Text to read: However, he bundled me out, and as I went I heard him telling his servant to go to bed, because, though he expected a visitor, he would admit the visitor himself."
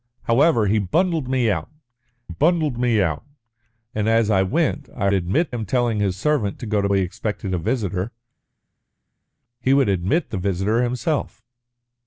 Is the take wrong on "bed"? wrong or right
wrong